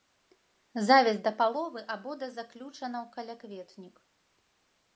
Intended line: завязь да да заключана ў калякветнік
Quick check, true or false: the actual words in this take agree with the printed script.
false